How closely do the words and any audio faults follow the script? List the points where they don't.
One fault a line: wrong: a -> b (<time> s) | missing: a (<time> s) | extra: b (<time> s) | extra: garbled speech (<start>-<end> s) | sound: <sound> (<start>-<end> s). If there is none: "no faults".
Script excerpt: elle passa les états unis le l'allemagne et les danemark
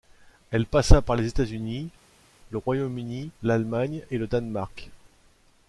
extra: par (1.0 s)
extra: royaume uni (2.6 s)
wrong: les -> le (4.2 s)